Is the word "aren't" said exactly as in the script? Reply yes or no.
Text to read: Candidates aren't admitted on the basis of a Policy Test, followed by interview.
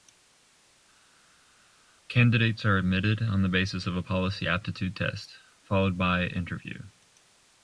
no